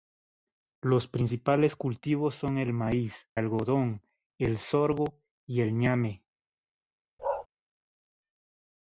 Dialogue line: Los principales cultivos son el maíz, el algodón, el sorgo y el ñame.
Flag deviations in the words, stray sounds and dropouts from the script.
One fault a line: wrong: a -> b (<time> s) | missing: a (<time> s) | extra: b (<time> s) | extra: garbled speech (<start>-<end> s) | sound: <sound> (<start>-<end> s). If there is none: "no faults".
missing: el (3.3 s)
sound: bark (7.2-7.5 s)